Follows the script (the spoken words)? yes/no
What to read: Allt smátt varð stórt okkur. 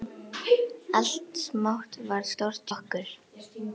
yes